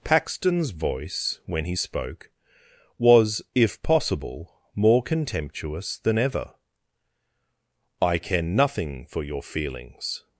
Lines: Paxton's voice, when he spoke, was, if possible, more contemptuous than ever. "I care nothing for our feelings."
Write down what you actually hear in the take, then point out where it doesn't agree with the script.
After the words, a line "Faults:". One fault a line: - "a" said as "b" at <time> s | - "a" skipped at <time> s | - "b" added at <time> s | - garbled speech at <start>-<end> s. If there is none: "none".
Paxton's voice, when he spoke, was, if possible, more contemptuous than ever. "I care nothing for your feelings."
Faults:
- "our" said as "your" at 9.2 s